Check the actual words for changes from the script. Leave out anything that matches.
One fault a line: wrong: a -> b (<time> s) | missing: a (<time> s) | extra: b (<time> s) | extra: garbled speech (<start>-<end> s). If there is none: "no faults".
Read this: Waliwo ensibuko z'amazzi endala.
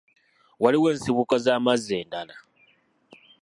no faults